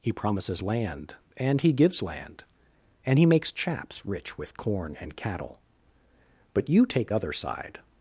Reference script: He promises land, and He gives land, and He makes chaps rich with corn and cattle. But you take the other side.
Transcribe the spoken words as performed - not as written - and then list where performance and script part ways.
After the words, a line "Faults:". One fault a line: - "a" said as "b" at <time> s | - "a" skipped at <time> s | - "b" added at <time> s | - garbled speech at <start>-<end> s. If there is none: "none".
He promises land, and He gives land, and He makes chaps rich with corn and cattle. But you take other side.
Faults:
- "the" skipped at 7.1 s